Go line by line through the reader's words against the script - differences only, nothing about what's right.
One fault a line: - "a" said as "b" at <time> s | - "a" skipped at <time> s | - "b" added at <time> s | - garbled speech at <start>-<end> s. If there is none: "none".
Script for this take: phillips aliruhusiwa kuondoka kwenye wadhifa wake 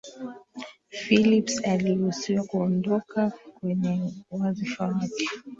none